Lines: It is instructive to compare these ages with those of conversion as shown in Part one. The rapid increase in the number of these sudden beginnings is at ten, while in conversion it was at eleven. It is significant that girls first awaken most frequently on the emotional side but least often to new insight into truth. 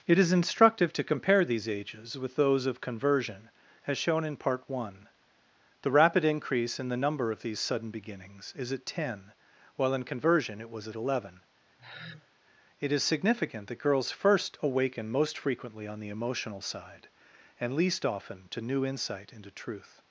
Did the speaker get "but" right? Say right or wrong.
wrong